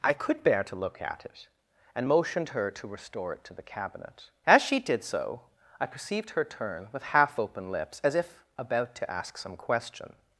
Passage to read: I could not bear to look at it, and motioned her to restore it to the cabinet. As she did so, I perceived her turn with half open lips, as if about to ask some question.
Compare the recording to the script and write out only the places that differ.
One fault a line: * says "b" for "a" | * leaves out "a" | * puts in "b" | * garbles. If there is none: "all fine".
* leaves out "not"